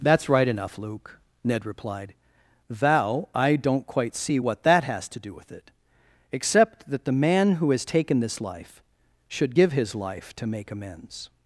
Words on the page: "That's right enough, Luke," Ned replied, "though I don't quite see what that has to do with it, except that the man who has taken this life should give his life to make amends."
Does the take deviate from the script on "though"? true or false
true